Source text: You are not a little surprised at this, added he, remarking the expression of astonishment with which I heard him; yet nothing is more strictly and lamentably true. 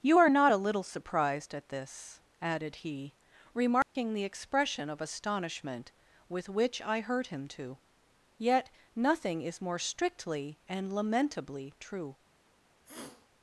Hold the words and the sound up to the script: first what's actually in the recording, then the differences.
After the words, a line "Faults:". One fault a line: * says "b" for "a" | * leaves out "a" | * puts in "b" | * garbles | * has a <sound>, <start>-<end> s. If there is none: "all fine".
You are not a little surprised at this, added he, remarking the expression of astonishment with which I heard him; to yet nothing is more strictly and lamentably true.
Faults:
* has a dropout, 3.8-4.0 s
* puts in "to"
* has a sniff, 12.8-13.3 s